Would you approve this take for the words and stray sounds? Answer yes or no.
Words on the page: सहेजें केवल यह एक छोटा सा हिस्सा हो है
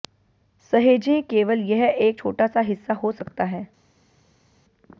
no